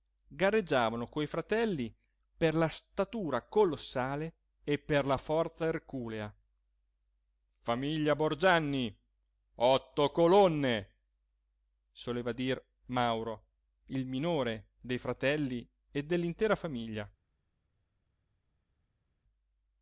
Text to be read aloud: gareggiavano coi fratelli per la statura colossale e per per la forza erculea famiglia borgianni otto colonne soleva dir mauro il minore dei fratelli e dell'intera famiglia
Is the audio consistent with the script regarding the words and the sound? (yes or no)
no